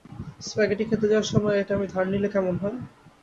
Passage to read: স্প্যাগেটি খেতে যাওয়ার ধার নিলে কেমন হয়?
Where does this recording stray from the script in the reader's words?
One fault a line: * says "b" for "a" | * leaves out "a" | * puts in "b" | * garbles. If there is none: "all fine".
* puts in "সময় এটা আমি"